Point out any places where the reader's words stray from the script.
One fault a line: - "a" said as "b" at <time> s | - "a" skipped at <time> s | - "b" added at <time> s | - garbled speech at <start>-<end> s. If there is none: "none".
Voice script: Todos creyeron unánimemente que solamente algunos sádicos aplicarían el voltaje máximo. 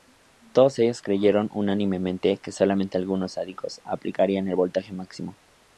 - "ellos" added at 0.8 s